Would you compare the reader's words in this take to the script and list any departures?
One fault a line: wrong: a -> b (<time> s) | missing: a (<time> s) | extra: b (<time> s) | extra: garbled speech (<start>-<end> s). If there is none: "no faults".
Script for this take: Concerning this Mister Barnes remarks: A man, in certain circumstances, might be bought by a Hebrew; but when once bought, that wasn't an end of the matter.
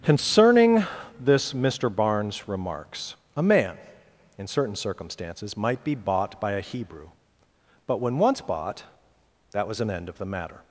wrong: wasn't -> was (9.7 s)